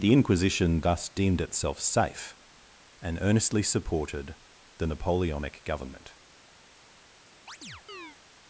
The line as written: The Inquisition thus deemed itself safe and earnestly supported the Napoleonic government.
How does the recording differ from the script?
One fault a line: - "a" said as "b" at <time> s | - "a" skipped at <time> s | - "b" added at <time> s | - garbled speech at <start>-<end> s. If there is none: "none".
none